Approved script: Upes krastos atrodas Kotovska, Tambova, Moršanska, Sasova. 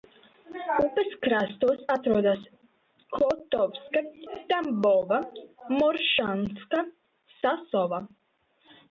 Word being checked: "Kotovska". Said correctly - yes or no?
yes